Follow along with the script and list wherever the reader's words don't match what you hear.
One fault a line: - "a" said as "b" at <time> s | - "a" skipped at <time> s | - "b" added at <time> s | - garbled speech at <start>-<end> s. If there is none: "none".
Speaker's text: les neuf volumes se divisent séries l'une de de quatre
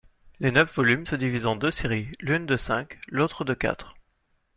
- "en deux" added at 1.4 s
- "cinq l'autre" added at 2.5 s